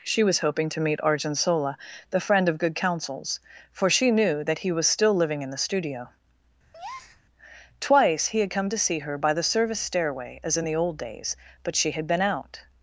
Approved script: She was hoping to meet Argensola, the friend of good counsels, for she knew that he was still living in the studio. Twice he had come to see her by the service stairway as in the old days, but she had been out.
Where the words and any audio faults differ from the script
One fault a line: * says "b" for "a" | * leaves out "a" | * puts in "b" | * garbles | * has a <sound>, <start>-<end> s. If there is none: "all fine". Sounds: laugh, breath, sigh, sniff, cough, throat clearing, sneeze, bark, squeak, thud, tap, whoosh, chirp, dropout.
* has a breath, 6.7-7.2 s